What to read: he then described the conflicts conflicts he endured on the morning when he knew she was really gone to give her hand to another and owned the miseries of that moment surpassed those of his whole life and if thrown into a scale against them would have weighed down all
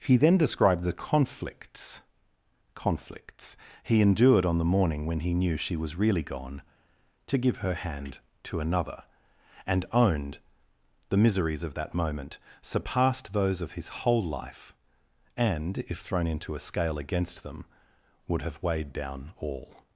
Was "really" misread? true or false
false